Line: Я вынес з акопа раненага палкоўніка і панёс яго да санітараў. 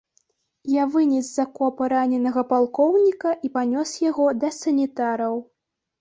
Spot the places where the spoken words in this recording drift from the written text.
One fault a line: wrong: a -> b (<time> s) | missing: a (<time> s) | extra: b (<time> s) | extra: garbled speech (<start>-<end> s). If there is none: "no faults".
no faults